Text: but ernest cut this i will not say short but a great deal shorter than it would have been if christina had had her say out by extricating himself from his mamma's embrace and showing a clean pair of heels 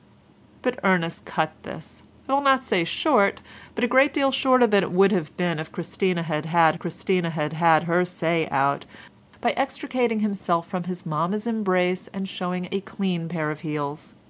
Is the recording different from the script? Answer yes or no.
yes